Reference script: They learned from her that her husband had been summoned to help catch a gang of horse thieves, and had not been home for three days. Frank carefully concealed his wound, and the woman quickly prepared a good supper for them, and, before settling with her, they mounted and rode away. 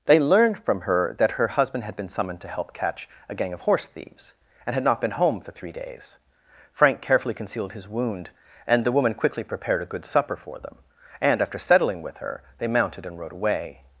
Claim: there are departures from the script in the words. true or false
true